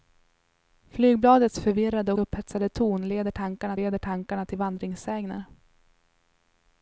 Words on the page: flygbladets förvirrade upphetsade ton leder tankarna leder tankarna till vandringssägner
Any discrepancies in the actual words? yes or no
no